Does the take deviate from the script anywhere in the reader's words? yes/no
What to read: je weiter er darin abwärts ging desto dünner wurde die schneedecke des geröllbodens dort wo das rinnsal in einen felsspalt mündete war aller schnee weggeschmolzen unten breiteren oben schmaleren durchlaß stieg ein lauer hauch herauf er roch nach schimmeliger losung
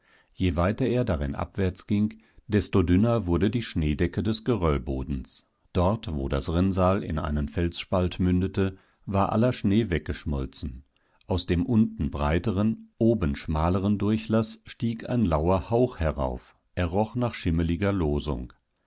yes